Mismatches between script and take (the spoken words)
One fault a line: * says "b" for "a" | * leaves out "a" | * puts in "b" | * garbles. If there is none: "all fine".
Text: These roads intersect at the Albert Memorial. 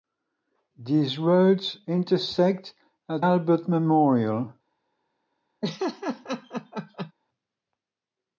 * leaves out "the"